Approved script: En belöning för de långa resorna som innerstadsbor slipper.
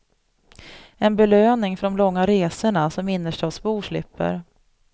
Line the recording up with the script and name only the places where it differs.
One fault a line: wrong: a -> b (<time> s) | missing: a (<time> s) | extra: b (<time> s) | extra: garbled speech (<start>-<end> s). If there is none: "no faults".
no faults